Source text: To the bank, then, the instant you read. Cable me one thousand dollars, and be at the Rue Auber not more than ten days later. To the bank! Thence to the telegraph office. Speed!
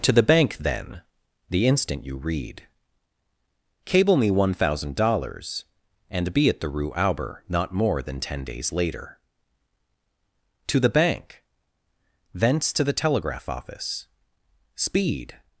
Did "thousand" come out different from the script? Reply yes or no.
no